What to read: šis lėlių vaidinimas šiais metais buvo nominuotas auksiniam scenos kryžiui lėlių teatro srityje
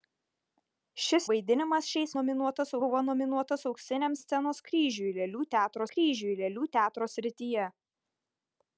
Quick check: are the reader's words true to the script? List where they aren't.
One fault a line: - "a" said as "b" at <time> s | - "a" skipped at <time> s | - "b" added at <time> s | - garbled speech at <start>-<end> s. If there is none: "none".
- "lėlių" skipped at 1.3 s
- "metais" said as "nominuotas" at 2.2 s
- "kryžiui lėlių teatro" added at 6.0 s